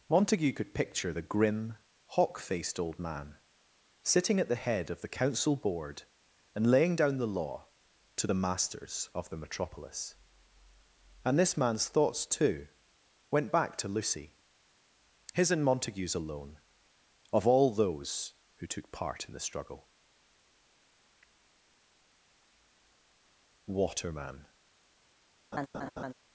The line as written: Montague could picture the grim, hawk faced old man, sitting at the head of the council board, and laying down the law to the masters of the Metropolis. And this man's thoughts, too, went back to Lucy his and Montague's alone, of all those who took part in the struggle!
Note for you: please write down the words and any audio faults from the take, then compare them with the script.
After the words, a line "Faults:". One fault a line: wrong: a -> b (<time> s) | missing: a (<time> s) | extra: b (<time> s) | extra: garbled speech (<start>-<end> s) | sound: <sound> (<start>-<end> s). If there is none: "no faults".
Montague could picture the grim, hawk faced old man, sitting at the head of the council board, and laying down the law to the masters of the Metropolis. And this man's thoughts, too, went back to Lucy his and Montague's alone, of all those who took part in the struggle! "Waterman
Faults:
extra: Waterman (23.7 s)
sound: laugh (25.5-26.1 s)